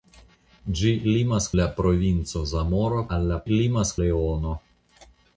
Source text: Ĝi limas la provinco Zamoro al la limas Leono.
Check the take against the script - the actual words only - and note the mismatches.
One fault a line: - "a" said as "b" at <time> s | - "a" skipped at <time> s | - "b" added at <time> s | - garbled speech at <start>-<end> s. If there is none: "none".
none